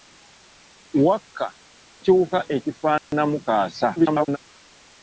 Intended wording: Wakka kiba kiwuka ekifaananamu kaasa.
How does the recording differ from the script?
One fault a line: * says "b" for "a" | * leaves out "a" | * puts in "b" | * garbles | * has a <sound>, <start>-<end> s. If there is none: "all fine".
* leaves out "kiba"
* has a dropout, 3.0-3.1 s
* garbles